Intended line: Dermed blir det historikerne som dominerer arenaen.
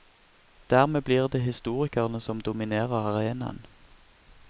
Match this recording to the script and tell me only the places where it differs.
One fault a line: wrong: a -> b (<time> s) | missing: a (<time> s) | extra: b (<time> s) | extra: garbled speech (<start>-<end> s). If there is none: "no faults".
no faults